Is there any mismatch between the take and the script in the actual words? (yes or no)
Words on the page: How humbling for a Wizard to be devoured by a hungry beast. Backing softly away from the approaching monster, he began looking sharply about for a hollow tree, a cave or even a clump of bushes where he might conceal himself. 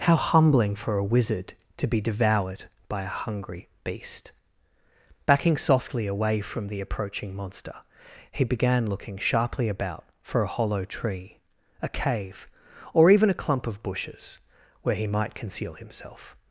no